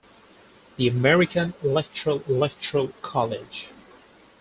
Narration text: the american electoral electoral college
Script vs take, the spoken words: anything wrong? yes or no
no